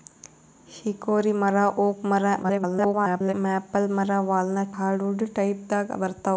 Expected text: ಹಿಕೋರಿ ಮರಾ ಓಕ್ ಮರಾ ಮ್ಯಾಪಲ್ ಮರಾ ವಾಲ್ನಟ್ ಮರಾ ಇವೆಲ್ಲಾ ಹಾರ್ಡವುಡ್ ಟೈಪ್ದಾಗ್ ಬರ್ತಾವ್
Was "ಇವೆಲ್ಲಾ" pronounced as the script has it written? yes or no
no